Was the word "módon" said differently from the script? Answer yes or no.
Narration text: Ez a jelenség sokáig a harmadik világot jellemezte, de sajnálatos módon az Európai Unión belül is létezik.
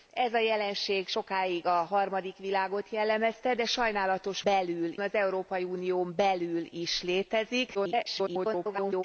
yes